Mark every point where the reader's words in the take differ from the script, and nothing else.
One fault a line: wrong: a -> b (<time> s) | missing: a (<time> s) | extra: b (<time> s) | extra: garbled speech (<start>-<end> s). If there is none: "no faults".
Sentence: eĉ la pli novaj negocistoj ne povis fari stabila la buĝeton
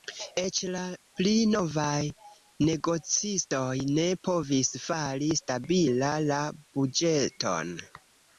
no faults